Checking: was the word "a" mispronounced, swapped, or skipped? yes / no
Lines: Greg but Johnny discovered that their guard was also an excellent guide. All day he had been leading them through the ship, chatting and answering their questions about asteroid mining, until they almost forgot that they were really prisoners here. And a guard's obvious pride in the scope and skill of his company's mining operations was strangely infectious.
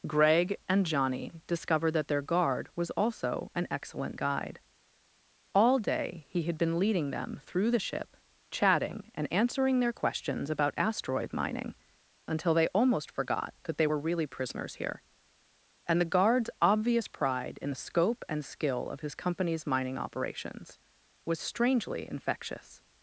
yes